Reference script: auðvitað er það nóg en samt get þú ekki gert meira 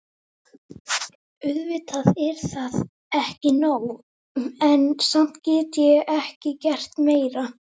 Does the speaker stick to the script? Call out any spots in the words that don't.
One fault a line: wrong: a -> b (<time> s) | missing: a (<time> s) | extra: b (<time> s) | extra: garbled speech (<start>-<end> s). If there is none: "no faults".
extra: ekki (3.2 s)
wrong: þú -> ég (5.9 s)